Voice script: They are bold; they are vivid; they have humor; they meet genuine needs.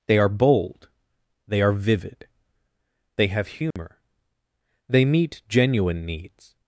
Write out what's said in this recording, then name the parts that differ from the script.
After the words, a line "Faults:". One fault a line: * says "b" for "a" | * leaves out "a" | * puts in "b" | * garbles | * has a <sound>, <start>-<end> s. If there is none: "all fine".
They are bold; they are vivid; they have humor; they meet genuine needs.
Faults:
* has a dropout, 3.7-3.8 s